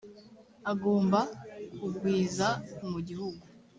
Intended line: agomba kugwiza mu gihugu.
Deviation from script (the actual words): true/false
false